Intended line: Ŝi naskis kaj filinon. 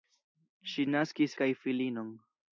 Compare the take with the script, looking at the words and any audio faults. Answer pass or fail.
pass